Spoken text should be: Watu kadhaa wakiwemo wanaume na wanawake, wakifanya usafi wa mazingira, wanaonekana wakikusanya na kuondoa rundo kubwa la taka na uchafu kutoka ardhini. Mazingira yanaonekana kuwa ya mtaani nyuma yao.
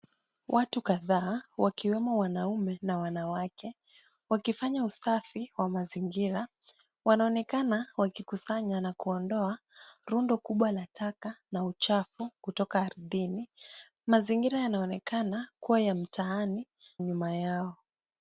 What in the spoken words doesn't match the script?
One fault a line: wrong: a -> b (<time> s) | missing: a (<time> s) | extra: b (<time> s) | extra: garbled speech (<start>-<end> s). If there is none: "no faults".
no faults